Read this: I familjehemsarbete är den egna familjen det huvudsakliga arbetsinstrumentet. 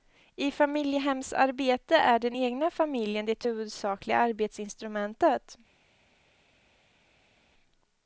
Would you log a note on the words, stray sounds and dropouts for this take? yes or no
no